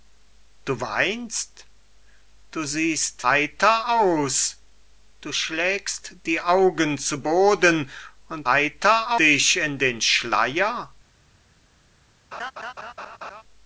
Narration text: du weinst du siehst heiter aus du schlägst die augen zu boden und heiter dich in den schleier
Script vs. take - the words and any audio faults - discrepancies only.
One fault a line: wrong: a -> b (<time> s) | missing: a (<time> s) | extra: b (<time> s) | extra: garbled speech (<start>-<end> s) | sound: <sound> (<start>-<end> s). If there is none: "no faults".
sound: laugh (12.3-13.4 s)